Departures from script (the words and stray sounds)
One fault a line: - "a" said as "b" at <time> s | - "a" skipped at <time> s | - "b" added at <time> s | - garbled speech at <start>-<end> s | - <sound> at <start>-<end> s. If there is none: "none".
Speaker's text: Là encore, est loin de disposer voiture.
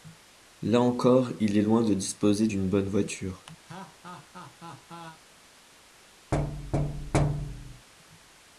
- "il" added at 1.4 s
- "d'une bonne" added at 2.5 s
- laugh at 3.6-5.2 s
- thud at 6.3-7.9 s